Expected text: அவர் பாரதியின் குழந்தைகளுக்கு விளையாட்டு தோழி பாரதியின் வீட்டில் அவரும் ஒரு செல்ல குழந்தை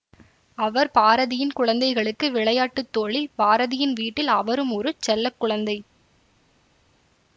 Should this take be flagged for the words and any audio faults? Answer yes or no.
no